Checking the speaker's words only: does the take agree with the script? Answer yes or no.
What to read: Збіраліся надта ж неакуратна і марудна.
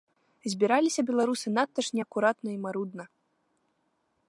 no